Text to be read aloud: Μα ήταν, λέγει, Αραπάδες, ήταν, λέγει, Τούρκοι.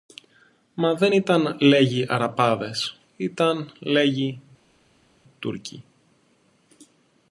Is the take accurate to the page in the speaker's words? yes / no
no